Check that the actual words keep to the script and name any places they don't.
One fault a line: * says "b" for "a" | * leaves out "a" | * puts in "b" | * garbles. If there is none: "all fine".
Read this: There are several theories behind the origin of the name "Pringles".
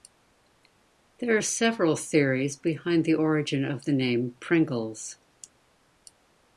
all fine